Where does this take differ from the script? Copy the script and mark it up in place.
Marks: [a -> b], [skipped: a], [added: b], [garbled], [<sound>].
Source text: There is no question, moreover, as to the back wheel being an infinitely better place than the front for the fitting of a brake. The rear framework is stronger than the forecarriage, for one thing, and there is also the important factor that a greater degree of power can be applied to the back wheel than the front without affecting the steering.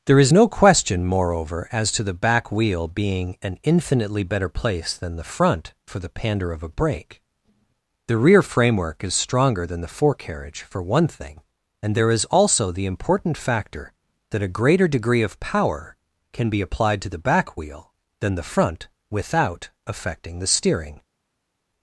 There is no question, moreover, as to the back wheel being an infinitely better place than the front for the [fitting -> pander] of a brake. The rear framework is stronger than the forecarriage, for one thing, and there is also the important factor that a greater degree of power can be applied to the back wheel than the front without affecting the steering.